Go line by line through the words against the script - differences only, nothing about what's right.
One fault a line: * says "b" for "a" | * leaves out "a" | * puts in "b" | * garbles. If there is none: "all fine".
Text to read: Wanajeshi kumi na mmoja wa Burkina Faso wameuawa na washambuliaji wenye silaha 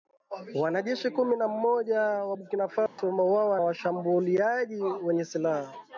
* leaves out "na"